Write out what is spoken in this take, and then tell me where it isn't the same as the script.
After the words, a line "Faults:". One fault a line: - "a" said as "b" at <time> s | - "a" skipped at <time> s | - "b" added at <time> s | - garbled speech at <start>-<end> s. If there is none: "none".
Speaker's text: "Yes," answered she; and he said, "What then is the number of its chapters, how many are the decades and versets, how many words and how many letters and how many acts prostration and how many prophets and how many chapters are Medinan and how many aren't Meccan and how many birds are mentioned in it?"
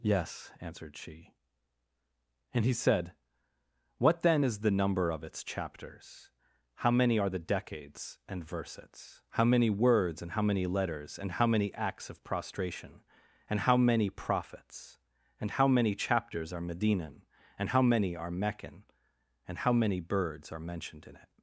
"Yes," answered she; and he said, "What then is the number of its chapters, how many are the decades and versets, how many words and how many letters and how many acts of prostration and how many prophets and how many chapters are Medinan and how many are Meccan and how many birds are mentioned in it?"
Faults:
- "of" added at 12.1 s
- "aren't" said as "are" at 18.1 s